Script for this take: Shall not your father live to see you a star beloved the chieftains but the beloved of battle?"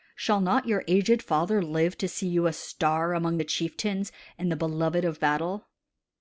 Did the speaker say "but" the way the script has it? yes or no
no